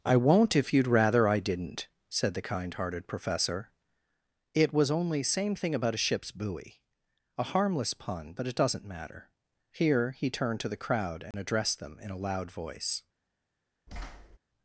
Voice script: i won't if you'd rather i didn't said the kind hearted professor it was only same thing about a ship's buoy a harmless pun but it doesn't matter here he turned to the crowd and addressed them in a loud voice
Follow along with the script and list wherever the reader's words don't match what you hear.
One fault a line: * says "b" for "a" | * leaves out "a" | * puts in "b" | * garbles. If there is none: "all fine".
all fine